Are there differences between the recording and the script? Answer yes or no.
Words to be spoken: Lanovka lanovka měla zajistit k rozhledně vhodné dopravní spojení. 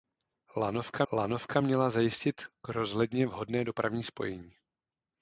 no